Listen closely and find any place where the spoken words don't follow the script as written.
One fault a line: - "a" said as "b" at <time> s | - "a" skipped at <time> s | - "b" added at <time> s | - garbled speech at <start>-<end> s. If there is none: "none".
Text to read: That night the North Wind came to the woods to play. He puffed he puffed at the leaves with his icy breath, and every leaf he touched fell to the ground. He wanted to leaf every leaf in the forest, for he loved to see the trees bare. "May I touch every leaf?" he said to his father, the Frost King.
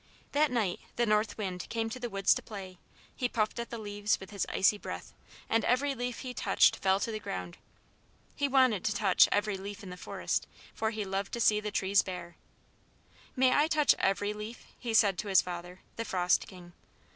- "he puffed" skipped at 3.6 s
- "leaf" said as "touch" at 9.0 s